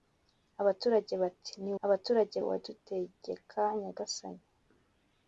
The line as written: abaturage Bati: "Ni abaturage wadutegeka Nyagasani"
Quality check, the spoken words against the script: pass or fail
pass